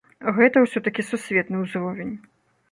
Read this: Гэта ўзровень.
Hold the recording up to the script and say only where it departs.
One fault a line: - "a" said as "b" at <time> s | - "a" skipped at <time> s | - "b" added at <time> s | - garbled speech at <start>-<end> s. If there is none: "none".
- "ўсё такі сусветны" added at 0.6 s